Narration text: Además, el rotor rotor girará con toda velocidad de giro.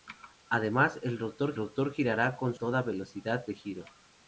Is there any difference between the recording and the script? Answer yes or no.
no